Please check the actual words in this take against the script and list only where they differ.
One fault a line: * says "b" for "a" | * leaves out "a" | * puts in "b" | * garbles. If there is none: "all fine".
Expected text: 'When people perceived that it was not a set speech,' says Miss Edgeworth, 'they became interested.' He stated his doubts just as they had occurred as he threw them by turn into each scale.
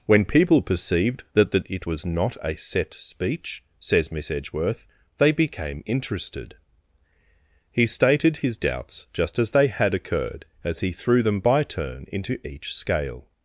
* puts in "that"